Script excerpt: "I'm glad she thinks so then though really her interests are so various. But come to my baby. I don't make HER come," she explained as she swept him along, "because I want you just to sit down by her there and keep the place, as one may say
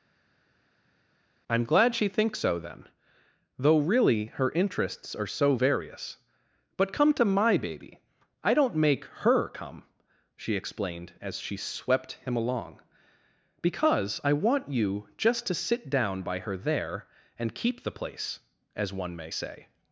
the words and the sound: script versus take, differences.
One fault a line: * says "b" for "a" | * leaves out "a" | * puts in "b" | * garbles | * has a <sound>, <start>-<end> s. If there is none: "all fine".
all fine